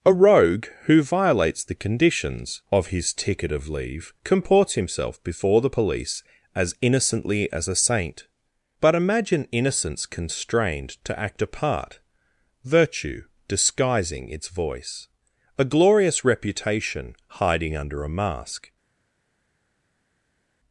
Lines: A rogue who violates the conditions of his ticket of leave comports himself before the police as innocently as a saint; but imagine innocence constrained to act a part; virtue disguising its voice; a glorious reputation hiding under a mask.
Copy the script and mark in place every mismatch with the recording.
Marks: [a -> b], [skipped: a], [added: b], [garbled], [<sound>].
A rogue who violates the conditions of his ticket of leave comports himself before the police as innocently as a saint; but imagine innocence constrained to act a part; virtue disguising its voice; a glorious reputation hiding under a mask.